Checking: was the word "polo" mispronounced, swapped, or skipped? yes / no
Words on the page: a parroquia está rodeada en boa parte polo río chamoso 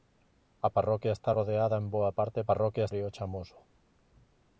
yes